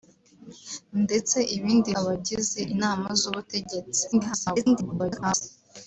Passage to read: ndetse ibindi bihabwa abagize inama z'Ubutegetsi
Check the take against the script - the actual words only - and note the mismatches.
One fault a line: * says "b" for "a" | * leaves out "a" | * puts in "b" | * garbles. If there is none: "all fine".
* leaves out "bihabwa"
* garbles